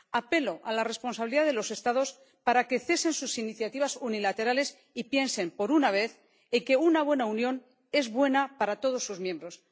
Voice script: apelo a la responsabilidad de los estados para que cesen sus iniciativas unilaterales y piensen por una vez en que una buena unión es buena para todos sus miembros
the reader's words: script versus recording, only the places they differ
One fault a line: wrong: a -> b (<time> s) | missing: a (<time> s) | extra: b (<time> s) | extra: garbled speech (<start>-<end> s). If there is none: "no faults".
no faults